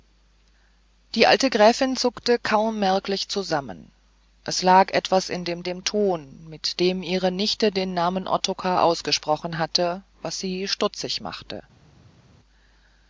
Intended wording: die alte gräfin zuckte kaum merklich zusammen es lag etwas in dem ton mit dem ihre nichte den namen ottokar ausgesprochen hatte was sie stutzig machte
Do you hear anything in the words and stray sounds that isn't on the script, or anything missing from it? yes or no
yes